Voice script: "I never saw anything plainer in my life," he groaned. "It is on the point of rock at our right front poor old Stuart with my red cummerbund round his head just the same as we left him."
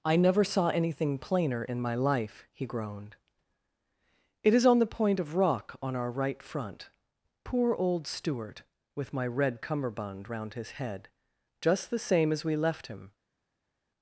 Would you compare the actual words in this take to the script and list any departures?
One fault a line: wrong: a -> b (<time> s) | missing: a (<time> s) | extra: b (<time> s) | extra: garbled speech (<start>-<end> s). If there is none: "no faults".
wrong: at -> on (5.8 s)